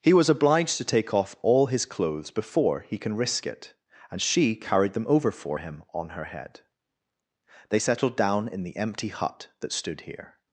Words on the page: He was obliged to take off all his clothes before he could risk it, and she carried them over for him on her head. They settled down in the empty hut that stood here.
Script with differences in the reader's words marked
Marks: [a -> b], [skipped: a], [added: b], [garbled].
He was obliged to take off all his clothes before he [could -> can] risk it, and she carried them over for him on her head. They settled down in the empty hut that stood here.